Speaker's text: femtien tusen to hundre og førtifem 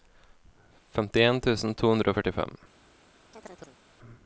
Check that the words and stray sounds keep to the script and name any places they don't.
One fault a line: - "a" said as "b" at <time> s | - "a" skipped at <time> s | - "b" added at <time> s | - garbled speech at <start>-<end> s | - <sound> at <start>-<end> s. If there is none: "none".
- chirp at 3.3-3.8 s